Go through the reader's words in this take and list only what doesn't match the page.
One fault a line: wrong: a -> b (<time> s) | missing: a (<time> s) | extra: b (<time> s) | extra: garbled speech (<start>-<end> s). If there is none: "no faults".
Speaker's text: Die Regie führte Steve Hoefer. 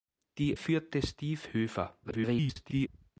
missing: Regie (0.5 s)
extra: garbled speech (2.0-2.9 s)